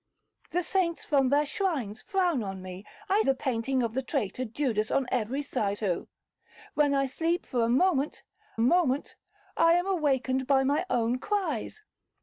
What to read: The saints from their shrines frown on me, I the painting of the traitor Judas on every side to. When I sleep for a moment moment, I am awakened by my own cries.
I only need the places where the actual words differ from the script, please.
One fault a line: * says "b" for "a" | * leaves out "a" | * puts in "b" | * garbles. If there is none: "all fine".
all fine